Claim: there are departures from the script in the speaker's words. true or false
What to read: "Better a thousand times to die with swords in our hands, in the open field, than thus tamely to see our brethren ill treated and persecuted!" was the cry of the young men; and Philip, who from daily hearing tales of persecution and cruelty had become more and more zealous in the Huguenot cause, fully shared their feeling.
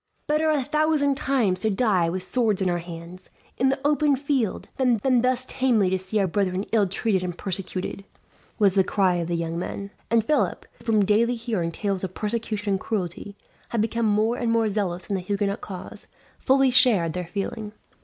true